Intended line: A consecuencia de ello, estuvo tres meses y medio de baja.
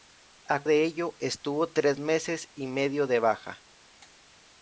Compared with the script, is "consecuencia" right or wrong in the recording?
wrong